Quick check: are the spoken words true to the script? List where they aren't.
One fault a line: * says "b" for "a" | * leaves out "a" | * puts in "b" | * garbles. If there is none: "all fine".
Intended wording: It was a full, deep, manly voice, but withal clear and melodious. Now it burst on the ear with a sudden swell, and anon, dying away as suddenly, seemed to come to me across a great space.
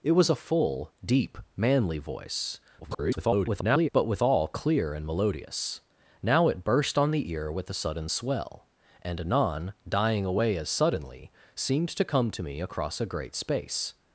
* garbles